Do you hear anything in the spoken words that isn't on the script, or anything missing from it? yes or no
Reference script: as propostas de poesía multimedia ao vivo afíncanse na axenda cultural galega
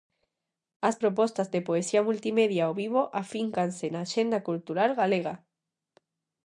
no